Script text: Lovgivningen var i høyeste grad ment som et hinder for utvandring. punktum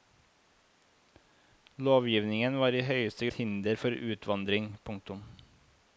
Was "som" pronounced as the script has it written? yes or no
no